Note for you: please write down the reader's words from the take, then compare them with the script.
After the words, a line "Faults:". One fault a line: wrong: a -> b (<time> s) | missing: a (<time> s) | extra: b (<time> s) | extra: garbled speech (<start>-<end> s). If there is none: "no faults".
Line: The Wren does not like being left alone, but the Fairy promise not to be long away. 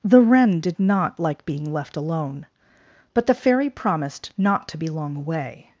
The Wren did not like being left alone, but the Fairy promised not to be long away.
Faults:
wrong: does -> did (0.6 s)
wrong: promise -> promised (3.7 s)